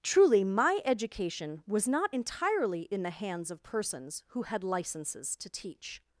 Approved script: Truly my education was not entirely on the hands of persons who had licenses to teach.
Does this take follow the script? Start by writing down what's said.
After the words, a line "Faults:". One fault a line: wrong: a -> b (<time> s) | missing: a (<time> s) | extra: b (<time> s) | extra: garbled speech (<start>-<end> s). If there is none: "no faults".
Truly my education was not entirely in the hands of persons who had licenses to teach.
Faults:
wrong: on -> in (2.8 s)